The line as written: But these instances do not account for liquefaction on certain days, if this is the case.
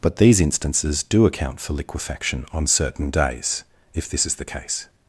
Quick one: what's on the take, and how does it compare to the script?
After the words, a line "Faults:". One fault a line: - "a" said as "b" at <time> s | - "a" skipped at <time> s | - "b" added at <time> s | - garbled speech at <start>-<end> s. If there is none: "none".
But these instances do account for liquefaction on certain days, if this is the case.
Faults:
- "not" skipped at 1.2 s